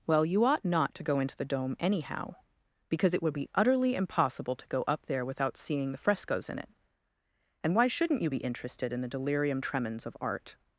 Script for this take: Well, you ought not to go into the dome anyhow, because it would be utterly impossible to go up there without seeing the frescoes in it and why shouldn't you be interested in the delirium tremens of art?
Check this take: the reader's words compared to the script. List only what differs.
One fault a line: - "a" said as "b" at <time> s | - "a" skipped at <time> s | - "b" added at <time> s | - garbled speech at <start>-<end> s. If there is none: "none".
none